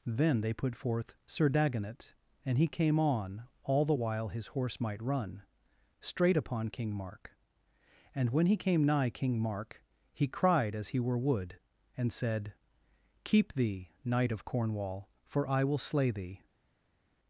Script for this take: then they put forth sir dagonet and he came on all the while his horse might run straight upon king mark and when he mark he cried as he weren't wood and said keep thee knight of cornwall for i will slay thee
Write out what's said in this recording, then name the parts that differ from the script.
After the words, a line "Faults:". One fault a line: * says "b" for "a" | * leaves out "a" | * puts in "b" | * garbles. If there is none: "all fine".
then they put forth sir dagonet and he came on all the while his horse might run straight upon king mark and when he came nigh king mark he cried as he were wood and said keep thee knight of cornwall for i will slay thee
Faults:
* puts in "came nigh king"
* says "were" for "weren't"